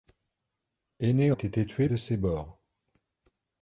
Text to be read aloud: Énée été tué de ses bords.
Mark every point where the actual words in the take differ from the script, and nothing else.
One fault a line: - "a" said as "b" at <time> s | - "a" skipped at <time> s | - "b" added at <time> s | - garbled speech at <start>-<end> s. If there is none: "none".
none